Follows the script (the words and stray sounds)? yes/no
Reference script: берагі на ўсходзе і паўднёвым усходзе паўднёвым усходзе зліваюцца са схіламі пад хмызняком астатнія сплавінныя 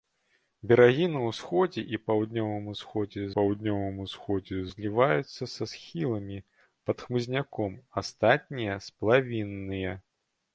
yes